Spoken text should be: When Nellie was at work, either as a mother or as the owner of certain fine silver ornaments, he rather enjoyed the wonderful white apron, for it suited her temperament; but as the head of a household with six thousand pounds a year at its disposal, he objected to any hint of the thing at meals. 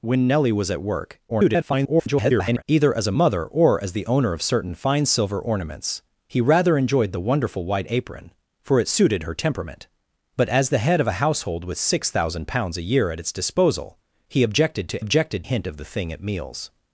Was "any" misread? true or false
true